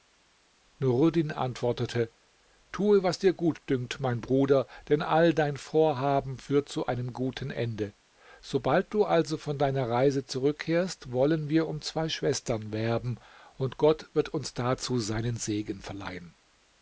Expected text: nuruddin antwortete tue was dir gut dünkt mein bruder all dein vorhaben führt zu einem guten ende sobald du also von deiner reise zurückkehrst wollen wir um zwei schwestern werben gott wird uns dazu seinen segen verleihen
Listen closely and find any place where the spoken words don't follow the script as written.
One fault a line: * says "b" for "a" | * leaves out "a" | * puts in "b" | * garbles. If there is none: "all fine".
* puts in "denn"
* puts in "und"